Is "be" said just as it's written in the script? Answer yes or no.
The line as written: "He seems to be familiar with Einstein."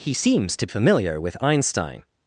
no